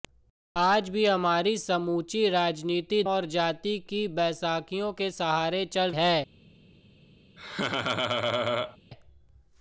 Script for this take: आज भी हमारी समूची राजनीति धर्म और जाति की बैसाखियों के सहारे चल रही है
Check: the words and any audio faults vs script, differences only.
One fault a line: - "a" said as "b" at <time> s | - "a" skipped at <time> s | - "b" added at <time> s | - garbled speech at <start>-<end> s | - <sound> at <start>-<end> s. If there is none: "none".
- "धर्म" skipped at 3.0 s
- "रही" skipped at 5.9 s
- laugh at 7.4-8.8 s